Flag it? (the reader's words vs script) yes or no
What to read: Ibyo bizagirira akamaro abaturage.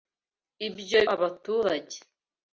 yes